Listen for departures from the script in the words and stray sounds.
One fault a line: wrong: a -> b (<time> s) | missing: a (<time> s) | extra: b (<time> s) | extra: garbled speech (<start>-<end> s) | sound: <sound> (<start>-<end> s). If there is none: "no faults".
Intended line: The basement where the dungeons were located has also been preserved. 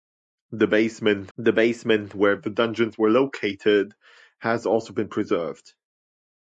extra: the basement (1.4 s)